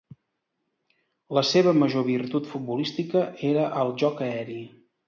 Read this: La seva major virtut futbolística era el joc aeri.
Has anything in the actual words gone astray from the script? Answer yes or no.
no